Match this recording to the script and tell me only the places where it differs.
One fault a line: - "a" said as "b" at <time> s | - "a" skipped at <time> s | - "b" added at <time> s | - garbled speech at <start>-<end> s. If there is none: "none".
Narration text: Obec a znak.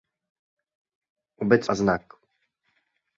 none